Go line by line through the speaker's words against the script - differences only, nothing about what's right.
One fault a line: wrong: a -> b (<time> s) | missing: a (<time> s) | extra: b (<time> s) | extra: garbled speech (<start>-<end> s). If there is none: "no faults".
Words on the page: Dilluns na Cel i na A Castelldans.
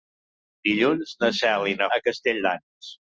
no faults